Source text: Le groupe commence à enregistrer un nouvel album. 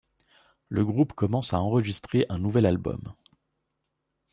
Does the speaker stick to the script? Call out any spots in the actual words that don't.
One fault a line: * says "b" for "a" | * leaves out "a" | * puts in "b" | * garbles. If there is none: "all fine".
all fine